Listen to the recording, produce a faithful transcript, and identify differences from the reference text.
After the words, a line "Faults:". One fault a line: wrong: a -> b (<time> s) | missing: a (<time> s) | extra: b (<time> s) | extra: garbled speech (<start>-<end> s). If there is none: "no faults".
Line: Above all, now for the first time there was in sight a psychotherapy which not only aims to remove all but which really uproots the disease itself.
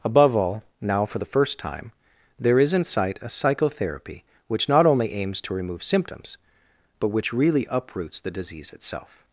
Above all, now for the first time there is in sight a psychotherapy which not only aims to remove symptoms but which really uproots the disease itself.
Faults:
wrong: was -> is (2.6 s)
wrong: all -> symptoms (5.8 s)